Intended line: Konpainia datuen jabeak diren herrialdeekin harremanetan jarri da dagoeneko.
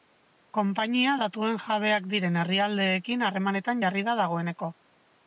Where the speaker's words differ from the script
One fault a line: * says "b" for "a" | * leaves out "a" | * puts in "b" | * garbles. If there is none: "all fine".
all fine